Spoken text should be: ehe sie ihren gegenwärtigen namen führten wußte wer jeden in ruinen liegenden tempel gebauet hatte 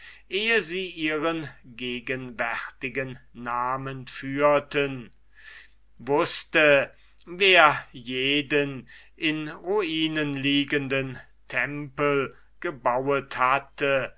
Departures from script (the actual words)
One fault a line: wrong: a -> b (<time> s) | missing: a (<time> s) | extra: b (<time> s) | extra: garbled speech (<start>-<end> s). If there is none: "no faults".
no faults